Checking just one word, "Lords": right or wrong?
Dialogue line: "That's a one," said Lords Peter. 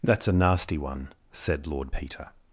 wrong